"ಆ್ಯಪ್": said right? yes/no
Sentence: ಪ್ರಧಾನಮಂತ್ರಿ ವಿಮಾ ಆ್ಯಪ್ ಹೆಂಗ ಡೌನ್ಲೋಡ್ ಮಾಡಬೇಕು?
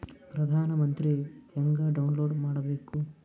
no